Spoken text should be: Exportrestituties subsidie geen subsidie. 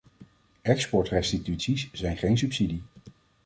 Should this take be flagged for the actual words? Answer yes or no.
yes